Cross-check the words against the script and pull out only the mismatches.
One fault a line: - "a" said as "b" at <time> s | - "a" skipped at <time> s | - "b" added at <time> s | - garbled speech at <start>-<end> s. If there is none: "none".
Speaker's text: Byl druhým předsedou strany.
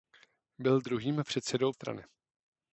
none